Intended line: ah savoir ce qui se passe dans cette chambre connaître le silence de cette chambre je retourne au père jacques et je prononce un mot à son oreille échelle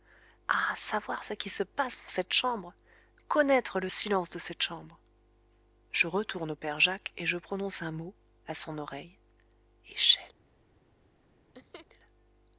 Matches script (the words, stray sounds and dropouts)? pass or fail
fail